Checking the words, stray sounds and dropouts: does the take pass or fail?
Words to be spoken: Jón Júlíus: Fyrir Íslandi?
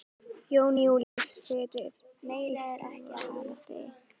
fail